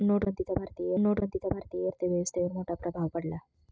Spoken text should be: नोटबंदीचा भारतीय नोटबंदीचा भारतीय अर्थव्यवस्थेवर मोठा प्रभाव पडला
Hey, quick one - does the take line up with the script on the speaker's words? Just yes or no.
yes